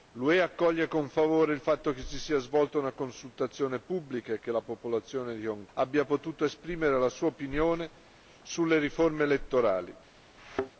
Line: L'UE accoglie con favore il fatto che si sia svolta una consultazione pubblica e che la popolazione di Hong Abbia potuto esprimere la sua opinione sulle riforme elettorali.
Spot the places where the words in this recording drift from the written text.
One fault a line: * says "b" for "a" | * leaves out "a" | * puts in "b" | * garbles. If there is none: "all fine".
all fine